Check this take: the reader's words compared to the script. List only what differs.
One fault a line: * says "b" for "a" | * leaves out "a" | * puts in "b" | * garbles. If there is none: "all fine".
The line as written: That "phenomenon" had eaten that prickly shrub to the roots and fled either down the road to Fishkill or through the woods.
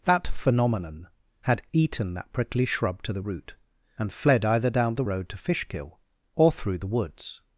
* says "root" for "roots"